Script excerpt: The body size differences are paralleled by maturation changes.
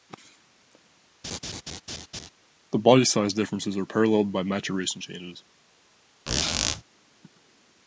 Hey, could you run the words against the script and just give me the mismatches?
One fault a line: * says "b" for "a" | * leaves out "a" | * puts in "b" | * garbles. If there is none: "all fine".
all fine